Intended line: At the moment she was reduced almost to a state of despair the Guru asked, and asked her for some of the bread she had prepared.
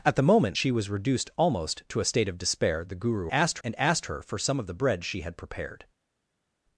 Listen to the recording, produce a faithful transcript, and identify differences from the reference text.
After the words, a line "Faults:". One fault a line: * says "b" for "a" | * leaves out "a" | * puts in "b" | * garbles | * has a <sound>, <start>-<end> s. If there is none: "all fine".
At the moment she was reduced almost to a state of despair the Guru asked, and asked her for some of the bread she had prepared.
Faults:
all fine